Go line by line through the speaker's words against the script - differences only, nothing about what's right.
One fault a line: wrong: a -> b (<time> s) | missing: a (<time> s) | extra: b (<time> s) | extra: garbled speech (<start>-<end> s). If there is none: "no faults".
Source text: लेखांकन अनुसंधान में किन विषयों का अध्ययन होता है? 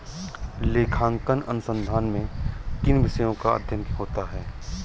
no faults